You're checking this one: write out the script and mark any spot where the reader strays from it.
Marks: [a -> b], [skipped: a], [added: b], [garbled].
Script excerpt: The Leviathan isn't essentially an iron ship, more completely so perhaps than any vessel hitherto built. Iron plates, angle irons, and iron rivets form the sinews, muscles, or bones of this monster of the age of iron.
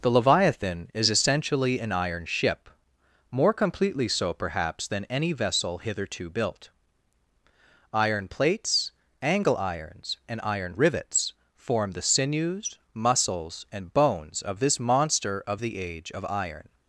The Leviathan [isn't -> is] essentially an iron ship, more completely so perhaps than any vessel hitherto built. Iron plates, angle irons, and iron rivets form the sinews, muscles, [or -> and] bones of this monster of the age of iron.